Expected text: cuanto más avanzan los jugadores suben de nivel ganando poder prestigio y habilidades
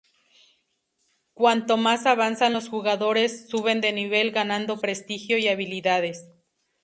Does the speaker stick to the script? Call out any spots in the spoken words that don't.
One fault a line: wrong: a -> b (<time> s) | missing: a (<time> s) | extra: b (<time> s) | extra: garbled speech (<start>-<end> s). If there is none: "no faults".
missing: poder (4.8 s)